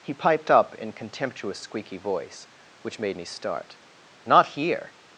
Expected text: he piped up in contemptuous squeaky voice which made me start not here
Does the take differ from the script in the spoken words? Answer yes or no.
no